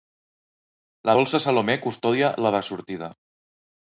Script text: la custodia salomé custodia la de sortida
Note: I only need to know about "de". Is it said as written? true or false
true